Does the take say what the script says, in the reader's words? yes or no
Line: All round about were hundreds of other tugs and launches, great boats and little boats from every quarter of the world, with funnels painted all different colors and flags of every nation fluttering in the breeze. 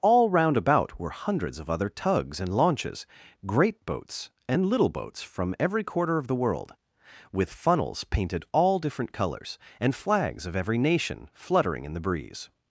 yes